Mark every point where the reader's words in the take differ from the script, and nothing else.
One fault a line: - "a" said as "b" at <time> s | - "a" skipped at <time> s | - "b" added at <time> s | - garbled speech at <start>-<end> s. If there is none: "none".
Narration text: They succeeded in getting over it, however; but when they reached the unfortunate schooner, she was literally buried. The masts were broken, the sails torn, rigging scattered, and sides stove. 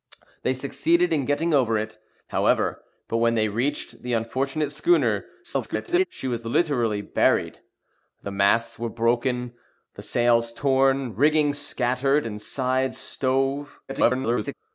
- garbled speech at 5.4-6.1 s
- garbled speech at 13.9-14.5 s